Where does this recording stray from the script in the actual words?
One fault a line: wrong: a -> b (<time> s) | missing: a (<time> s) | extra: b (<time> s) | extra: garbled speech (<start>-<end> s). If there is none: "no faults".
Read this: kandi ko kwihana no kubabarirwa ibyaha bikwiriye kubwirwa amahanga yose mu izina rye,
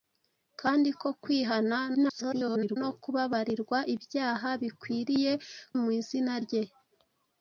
extra: garbled speech (1.9-2.8 s)
missing: kubwirwa amahanga yose (5.3 s)